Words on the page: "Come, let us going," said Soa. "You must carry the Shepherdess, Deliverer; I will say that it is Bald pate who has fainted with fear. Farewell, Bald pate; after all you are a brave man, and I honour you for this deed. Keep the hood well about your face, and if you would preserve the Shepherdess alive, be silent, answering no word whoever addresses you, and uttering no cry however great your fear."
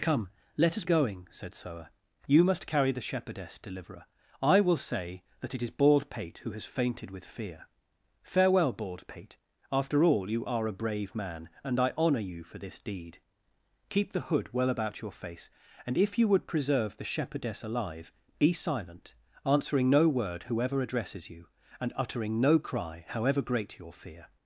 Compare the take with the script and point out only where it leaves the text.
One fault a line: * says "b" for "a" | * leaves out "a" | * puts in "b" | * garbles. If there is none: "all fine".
all fine